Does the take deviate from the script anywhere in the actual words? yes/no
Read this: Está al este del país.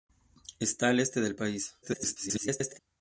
yes